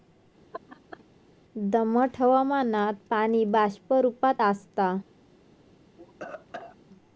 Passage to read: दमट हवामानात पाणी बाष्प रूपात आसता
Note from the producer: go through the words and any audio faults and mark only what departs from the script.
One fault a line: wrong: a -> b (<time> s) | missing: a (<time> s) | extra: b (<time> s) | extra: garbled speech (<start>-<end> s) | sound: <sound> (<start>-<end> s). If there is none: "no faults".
sound: laugh (0.5-1.0 s)
sound: cough (6.0-6.8 s)